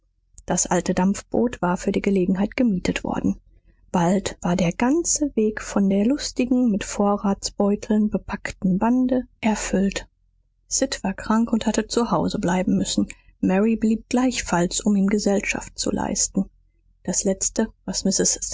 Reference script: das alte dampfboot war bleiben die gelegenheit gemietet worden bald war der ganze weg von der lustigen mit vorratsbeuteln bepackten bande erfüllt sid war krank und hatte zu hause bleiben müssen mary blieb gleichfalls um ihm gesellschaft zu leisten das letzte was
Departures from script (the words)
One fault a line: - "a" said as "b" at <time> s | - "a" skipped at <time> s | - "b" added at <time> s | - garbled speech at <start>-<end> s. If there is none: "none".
- "bleiben" said as "für" at 1.8 s